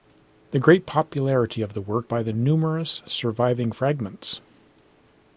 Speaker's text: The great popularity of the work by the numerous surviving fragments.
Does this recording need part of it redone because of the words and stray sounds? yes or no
no